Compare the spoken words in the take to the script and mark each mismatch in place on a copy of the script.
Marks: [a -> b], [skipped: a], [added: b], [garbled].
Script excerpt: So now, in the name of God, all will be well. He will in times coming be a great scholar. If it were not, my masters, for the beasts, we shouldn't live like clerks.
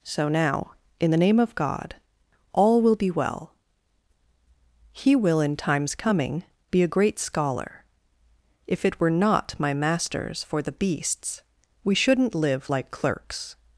So now, in the name of God, all will be well. He will in times coming be a great scholar. If it were not, my masters, for the beasts, we shouldn't live like clerks.